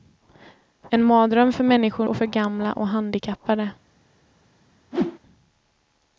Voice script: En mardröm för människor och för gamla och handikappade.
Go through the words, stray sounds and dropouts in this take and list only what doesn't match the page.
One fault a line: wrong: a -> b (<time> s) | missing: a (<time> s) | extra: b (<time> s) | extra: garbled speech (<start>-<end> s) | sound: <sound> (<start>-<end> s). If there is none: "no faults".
sound: whoosh (4.9-5.2 s)